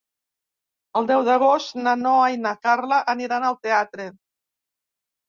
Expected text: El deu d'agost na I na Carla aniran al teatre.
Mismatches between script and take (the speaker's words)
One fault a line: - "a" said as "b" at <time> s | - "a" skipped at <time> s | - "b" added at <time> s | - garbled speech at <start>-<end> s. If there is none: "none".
- "Noa" added at 2.0 s